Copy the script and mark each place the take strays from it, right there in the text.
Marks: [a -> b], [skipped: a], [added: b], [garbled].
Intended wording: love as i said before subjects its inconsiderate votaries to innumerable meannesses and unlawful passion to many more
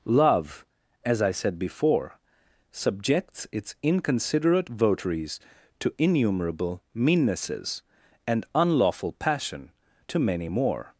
love as i said before subjects its inconsiderate votaries to innumerable meannesses and unlawful passion to many more